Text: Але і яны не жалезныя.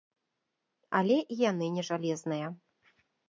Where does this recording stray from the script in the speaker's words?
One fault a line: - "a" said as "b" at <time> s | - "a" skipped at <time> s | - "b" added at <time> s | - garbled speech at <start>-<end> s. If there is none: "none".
none